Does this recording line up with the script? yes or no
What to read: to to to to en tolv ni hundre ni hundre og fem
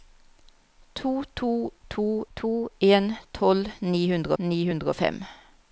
yes